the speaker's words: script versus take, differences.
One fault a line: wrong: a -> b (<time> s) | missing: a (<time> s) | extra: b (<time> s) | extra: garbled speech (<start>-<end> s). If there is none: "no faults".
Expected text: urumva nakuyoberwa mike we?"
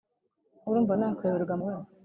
missing: mike (1.5 s)